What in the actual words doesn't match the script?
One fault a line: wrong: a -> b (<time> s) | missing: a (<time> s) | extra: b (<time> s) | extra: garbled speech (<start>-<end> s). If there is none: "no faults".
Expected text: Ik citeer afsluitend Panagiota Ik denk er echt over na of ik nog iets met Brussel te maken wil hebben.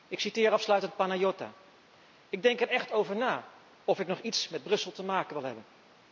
no faults